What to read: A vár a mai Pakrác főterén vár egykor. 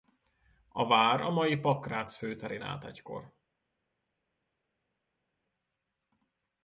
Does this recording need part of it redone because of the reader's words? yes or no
yes